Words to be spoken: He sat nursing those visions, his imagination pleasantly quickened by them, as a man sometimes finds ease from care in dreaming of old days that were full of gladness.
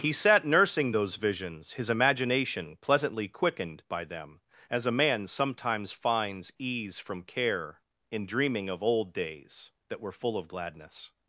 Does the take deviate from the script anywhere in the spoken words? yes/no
no